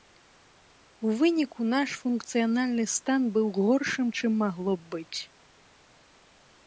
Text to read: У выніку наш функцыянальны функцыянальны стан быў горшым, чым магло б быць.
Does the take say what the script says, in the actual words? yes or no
no